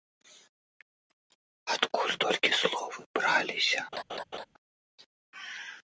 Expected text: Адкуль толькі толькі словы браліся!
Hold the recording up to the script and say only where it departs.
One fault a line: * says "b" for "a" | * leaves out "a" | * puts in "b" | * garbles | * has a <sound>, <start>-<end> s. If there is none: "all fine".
* leaves out "толькі"
* has a laugh, 3.9-4.5 s